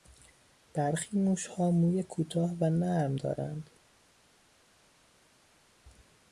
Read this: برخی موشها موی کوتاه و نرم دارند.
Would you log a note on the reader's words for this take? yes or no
no